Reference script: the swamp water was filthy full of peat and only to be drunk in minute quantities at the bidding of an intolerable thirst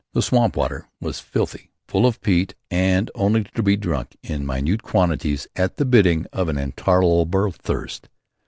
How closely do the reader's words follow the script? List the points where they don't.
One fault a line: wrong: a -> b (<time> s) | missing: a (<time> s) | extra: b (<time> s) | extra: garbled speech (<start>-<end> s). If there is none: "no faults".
no faults